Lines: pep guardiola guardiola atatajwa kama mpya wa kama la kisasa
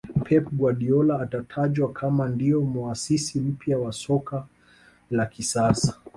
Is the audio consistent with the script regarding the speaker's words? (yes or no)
no